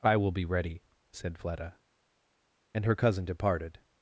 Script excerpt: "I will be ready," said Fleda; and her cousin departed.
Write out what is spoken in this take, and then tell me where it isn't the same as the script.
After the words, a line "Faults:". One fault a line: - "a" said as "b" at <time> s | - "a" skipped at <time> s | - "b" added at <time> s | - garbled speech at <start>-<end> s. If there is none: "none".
"I will be ready," said Fleda; and her cousin departed.
Faults:
none